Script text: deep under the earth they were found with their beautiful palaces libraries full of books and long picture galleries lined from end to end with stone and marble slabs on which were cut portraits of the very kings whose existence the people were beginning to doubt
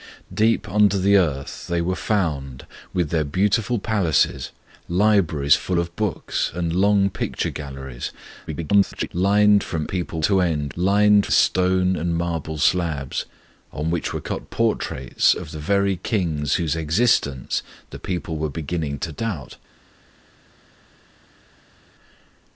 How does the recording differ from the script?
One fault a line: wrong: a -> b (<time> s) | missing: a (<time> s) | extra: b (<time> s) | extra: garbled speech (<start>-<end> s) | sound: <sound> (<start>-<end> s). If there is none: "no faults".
extra: garbled speech (8.5-9.1 s)
wrong: end -> people (9.8 s)
wrong: with -> lined (10.7 s)